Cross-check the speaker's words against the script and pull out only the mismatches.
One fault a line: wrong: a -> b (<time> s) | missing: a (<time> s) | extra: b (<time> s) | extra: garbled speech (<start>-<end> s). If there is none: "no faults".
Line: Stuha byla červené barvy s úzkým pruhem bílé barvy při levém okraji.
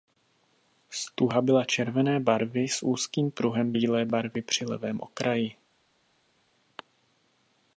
no faults